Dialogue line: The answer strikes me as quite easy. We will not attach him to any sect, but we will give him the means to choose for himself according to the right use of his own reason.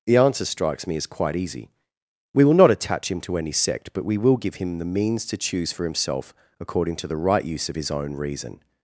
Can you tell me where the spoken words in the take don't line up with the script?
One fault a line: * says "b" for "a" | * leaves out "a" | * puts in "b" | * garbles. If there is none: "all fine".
all fine